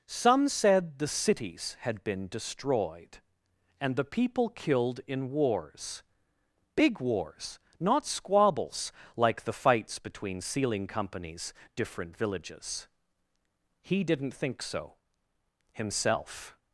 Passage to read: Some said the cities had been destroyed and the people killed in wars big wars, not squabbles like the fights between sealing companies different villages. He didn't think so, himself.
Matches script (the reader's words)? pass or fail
pass